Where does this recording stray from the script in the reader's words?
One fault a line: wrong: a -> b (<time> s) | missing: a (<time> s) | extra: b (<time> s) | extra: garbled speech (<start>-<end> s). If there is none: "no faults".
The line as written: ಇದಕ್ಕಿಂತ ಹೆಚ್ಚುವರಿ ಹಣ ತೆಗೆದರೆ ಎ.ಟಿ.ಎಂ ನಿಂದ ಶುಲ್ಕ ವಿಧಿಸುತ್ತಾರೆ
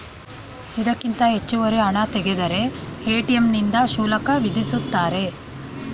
no faults